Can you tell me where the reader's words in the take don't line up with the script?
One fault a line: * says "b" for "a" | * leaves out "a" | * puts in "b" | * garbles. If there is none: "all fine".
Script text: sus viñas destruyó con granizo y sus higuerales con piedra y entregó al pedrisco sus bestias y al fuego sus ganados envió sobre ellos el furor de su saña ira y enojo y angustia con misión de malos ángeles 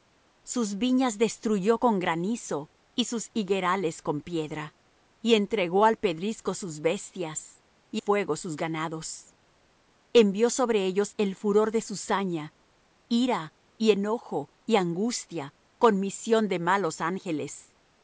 * leaves out "al"